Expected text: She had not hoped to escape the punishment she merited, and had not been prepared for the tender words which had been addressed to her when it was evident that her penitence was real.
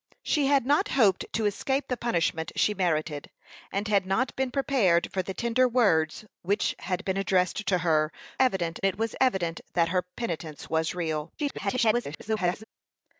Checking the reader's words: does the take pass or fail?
fail